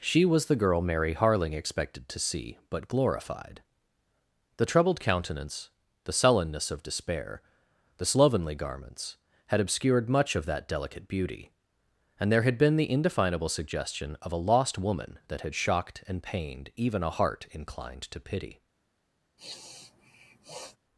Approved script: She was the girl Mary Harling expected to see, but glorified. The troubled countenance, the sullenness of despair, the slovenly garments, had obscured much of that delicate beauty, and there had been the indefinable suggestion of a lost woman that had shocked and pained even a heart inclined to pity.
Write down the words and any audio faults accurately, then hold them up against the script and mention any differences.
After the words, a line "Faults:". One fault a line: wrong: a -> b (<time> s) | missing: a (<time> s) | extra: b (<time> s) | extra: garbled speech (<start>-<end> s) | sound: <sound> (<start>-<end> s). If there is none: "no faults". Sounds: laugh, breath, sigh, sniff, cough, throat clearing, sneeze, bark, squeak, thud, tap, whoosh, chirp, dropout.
She was the girl Mary Harling expected to see, but glorified. The troubled countenance, the sullenness of despair, the slovenly garments, had obscured much of that delicate beauty, and there had been the indefinable suggestion of a lost woman that had shocked and pained even a heart inclined to pity.
Faults:
sound: sniff (19.4-20.8 s)